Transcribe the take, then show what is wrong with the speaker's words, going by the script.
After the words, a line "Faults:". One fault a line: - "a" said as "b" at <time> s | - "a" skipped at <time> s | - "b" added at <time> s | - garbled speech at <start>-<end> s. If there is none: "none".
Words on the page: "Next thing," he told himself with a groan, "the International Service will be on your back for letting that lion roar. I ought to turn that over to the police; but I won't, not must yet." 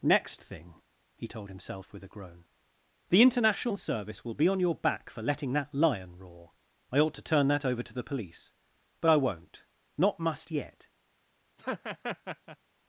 "Next thing," he told himself with a groan, "the International Service will be on your back for letting that lion roar. I ought to turn that over to the police; but I won't, not must yet."
Faults:
none